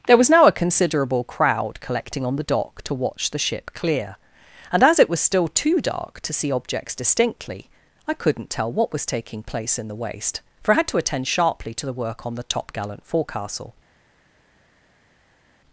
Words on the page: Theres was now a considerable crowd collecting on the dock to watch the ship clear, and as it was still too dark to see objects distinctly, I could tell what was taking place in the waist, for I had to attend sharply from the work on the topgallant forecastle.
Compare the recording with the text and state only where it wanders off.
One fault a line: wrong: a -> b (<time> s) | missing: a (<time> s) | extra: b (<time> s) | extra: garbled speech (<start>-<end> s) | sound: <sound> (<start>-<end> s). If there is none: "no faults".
wrong: Theres -> There (0.1 s)
wrong: could -> couldn't (8.1 s)
wrong: from -> to (11.7 s)